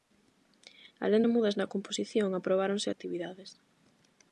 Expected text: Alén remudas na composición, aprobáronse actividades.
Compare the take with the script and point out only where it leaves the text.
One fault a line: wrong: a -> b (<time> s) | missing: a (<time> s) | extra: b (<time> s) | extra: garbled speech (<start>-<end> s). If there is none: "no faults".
no faults